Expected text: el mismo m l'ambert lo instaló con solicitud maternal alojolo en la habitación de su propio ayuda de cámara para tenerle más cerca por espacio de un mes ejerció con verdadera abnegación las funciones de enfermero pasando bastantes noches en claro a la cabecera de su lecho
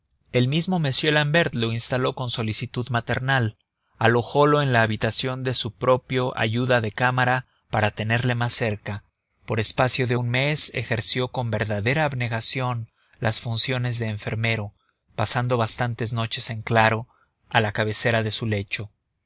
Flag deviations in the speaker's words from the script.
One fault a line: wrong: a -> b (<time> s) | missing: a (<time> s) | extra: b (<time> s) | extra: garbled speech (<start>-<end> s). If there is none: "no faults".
no faults